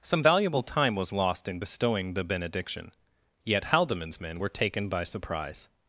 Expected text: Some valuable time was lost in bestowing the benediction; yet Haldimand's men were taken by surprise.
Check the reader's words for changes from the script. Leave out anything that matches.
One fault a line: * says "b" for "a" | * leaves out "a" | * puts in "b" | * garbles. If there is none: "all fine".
all fine